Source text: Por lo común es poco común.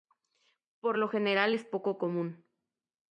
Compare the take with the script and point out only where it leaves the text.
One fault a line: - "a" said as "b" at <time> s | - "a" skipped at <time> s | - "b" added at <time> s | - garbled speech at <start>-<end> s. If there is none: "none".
- "común" said as "general" at 1.1 s